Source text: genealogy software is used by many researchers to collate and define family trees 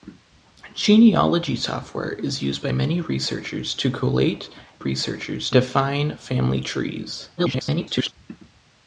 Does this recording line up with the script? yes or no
no